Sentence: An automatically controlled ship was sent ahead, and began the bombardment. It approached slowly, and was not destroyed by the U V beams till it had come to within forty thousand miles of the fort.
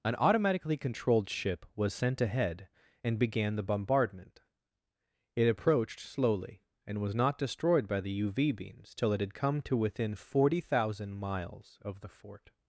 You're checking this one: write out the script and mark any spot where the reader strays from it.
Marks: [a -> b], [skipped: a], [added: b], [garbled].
An automatically controlled ship was sent ahead, and began the bombardment. It approached slowly, and was not destroyed by the U V beams till it had come to within forty thousand miles of the fort.